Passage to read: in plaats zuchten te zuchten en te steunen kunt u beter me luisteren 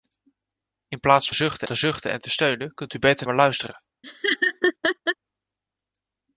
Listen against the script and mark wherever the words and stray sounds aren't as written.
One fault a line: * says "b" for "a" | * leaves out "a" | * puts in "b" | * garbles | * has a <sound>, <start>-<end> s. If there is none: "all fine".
* has a laugh, 4.0-5.2 s